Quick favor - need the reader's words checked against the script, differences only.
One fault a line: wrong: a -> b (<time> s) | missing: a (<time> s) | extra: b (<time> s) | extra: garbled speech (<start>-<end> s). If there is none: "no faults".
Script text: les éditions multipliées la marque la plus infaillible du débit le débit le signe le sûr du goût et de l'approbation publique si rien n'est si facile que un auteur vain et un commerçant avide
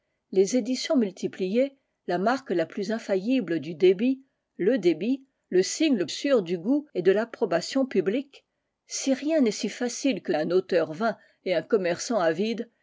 no faults